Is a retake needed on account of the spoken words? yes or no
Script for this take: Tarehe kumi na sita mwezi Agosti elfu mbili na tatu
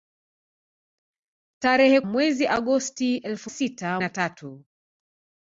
yes